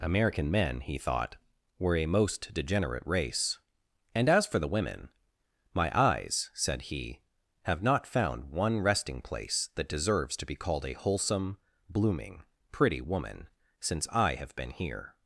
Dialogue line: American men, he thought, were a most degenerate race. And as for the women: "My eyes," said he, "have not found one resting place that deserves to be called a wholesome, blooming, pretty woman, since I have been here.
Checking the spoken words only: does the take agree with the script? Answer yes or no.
yes